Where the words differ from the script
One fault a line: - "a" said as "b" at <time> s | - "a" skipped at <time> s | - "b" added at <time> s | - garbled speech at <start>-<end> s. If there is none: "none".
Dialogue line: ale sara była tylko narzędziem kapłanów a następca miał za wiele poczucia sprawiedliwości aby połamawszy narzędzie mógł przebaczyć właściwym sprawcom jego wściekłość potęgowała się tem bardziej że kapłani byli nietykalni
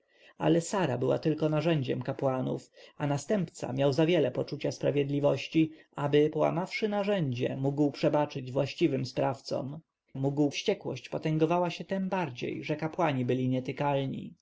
- "jego" said as "mógł" at 10.2 s